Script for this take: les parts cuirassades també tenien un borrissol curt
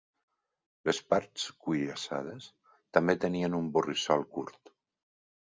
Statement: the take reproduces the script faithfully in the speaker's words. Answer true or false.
true